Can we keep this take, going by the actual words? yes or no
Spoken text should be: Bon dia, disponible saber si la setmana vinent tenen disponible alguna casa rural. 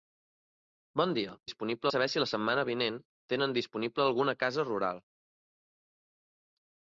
yes